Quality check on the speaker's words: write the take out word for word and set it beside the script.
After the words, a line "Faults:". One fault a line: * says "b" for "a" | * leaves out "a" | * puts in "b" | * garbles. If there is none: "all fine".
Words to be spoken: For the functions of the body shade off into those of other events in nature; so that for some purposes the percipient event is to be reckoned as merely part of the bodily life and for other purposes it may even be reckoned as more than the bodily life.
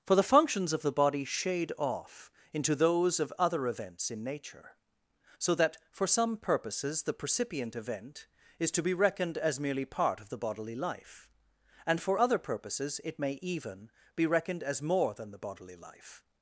For the functions of the body shade off into those of other events in nature; so that for some purposes the percipient event is to be reckoned as merely part of the bodily life and for other purposes it may even be reckoned as more than the bodily life.
Faults:
all fine